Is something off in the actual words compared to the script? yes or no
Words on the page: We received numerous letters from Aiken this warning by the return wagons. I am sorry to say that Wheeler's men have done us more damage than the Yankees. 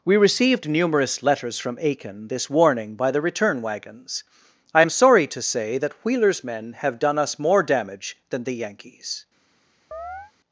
no